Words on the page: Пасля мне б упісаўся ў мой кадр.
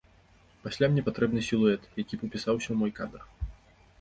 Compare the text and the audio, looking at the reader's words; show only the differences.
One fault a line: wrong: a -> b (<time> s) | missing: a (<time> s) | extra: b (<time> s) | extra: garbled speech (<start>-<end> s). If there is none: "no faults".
extra: патрэбны сілуэт які (1.1 s)